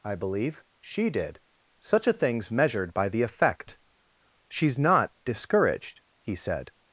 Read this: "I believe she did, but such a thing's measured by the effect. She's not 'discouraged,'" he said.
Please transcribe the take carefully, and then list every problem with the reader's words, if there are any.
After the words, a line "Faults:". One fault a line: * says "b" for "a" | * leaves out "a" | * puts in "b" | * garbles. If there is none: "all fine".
"I believe she did, such a thing's measured by the effect. She's not 'discouraged,'" he said.
Faults:
* leaves out "but"